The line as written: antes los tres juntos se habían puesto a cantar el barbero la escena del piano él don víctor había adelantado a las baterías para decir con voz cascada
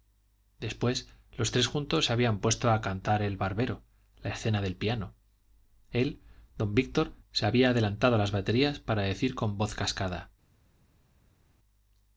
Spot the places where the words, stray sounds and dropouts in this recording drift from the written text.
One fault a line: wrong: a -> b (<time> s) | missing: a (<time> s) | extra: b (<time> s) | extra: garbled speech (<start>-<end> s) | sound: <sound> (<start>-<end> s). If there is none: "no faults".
wrong: antes -> después (0.6 s)
extra: se (7.3 s)